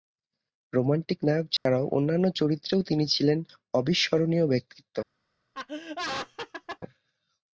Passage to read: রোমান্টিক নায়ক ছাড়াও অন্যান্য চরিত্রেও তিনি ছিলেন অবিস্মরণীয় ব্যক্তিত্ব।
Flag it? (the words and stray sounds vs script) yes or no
yes